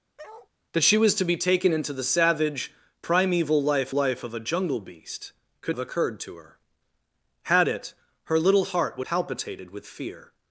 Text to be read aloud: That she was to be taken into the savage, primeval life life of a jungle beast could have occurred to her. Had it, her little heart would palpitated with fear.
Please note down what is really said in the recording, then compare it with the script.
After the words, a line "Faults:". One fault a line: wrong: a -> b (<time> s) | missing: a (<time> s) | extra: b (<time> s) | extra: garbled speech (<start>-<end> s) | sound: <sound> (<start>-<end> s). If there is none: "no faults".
That she was to be taken into the savage, primeval life life of a jungle beast could have occurred to her. Had it, her little heart would palpitated with fear.
Faults:
sound: bark (0.2-0.5 s)